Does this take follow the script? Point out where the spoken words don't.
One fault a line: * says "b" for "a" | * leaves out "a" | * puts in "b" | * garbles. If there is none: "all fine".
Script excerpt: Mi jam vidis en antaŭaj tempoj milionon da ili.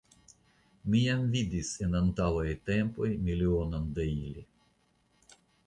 all fine